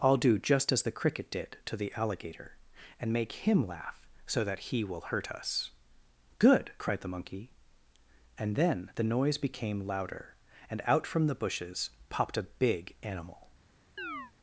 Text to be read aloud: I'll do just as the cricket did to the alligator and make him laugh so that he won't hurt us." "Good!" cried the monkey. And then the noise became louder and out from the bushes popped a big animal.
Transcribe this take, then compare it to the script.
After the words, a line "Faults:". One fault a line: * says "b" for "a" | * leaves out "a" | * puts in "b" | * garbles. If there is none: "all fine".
I'll do just as the cricket did to the alligator and make him laugh so that he will hurt us." "Good!" cried the monkey. And then the noise became louder and out from the bushes popped a big animal.
Faults:
* says "will" for "won't"